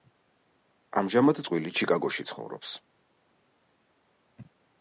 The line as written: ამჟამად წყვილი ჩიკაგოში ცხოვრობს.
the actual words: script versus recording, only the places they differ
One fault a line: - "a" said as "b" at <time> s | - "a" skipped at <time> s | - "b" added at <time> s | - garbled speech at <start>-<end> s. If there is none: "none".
none